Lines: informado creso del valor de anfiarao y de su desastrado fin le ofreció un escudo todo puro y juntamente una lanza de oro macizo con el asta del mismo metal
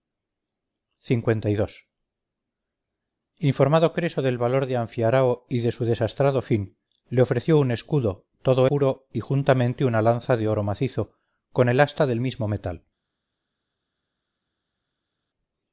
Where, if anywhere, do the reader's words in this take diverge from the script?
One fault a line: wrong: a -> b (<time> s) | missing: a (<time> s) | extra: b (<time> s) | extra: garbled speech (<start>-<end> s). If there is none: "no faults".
no faults